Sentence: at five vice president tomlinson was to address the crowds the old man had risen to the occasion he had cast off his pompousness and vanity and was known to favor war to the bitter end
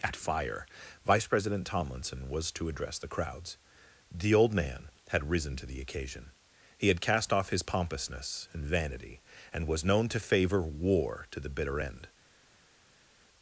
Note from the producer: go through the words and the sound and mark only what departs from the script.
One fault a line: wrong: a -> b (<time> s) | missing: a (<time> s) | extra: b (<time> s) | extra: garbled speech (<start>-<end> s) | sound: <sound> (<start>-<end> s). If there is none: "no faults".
wrong: five -> fire (0.1 s)